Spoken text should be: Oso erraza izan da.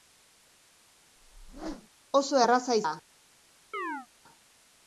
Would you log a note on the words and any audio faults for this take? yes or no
yes